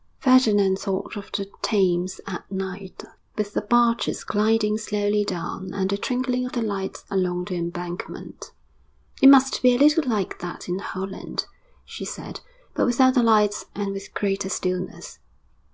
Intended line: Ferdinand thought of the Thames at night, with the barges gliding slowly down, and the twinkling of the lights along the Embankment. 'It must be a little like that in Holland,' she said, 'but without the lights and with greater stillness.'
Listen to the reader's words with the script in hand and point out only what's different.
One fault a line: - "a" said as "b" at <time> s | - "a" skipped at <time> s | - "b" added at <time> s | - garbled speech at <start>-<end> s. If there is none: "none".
none